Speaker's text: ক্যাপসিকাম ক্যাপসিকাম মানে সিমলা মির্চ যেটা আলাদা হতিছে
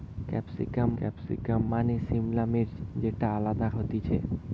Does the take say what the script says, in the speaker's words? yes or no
yes